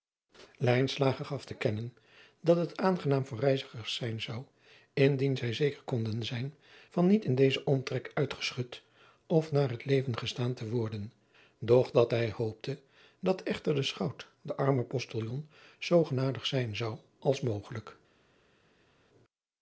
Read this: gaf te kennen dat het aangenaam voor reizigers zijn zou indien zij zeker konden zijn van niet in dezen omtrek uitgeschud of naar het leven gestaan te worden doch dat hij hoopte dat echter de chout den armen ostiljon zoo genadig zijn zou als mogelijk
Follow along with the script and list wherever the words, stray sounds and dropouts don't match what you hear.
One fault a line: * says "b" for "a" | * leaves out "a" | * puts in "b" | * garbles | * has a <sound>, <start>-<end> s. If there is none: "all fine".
all fine